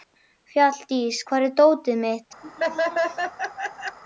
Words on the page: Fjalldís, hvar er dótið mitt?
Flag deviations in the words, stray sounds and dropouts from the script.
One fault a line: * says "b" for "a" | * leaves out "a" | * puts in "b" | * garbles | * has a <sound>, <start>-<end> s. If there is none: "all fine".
* has a laugh, 2.4-4.0 s